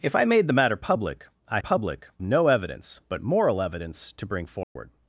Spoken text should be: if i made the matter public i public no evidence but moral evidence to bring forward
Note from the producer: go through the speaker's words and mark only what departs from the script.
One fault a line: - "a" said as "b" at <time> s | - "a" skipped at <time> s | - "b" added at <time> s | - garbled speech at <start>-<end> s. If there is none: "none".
none